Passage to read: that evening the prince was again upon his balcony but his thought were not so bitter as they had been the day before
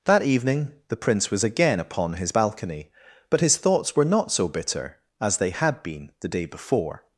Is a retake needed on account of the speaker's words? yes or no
yes